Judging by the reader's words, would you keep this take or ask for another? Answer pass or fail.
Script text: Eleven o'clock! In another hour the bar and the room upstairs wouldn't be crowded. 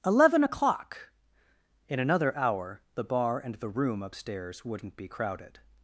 pass